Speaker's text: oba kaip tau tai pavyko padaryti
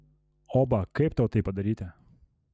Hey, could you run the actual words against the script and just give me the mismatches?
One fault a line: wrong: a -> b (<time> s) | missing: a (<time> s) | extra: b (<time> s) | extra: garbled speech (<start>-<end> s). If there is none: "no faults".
missing: pavyko (1.4 s)